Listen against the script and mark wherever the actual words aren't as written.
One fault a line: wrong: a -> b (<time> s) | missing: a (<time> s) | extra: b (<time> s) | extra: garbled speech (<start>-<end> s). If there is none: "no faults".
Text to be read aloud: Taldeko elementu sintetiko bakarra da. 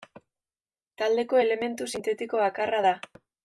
no faults